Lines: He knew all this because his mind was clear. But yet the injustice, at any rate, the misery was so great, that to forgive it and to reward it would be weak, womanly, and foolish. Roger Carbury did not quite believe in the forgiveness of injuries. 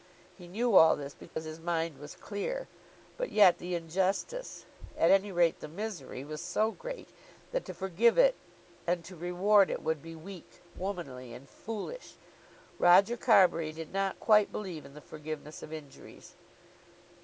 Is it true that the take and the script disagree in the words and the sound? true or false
true